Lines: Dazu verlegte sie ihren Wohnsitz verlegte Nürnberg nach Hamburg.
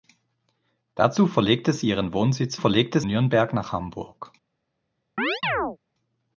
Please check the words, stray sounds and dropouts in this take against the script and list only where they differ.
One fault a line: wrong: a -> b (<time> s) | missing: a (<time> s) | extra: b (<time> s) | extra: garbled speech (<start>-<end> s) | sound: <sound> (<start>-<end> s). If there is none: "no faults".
sound: chirp (5.2-5.8 s)